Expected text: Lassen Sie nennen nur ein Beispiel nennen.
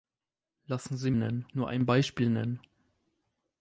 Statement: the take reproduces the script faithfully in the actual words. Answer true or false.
true